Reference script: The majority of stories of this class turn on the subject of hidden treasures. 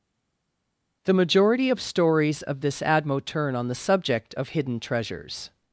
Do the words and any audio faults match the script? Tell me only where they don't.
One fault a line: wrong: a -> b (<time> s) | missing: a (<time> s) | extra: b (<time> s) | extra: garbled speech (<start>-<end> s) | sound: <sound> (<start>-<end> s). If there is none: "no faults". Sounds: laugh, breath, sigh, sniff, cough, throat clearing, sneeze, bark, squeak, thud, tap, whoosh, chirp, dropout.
wrong: class -> admo (2.8 s)